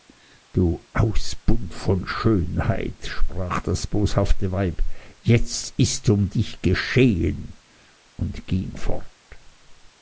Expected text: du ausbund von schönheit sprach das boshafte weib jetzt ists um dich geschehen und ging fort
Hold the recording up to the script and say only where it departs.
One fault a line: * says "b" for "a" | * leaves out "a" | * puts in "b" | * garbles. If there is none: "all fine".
all fine